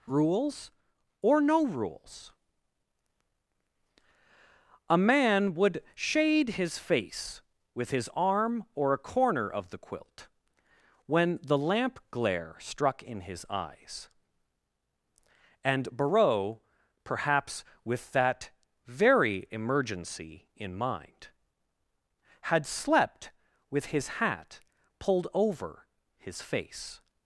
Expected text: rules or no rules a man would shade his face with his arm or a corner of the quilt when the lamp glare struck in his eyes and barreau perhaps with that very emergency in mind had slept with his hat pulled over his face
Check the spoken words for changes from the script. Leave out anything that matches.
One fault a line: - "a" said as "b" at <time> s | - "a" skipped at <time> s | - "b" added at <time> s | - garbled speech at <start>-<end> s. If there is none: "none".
none